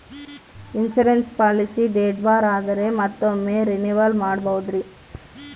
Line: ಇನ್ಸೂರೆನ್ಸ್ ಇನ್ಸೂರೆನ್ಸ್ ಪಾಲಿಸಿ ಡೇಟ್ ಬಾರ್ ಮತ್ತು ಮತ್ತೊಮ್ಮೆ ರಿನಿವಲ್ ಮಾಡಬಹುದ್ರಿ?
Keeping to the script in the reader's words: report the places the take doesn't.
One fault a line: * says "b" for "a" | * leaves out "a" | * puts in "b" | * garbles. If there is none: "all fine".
* leaves out "ಇನ್ಸೂರೆನ್ಸ್"
* says "ಆದರೆ" for "ಮತ್ತು"